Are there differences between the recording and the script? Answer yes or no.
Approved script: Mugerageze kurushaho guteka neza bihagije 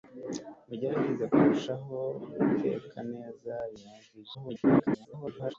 yes